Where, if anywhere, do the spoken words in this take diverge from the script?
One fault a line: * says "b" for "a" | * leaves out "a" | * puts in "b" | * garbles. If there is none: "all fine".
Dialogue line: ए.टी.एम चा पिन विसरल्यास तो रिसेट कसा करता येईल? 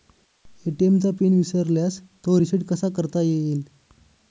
all fine